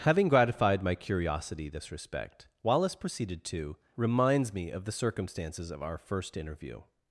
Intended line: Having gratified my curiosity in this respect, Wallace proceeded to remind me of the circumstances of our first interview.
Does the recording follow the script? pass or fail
fail